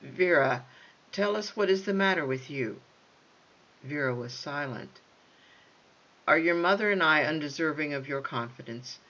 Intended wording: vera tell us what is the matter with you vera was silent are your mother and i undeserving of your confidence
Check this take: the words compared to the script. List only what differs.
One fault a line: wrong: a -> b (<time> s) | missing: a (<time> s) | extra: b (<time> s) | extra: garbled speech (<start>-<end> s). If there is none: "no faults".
no faults